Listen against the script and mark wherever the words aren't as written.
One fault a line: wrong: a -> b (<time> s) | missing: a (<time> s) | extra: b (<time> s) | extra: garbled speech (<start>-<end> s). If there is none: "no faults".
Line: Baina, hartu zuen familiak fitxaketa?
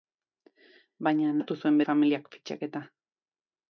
no faults